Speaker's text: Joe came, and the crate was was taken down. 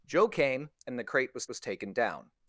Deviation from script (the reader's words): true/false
false